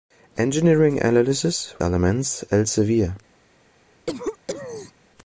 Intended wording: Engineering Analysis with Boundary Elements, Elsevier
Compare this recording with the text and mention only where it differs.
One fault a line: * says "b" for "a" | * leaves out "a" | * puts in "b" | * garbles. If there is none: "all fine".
* leaves out "with Boundary"